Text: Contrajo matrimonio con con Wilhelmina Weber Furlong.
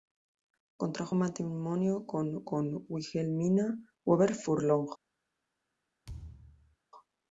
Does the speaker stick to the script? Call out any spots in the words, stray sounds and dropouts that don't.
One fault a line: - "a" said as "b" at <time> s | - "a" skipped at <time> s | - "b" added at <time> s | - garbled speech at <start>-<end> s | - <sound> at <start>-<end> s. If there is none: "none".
- thud at 6.1-6.8 s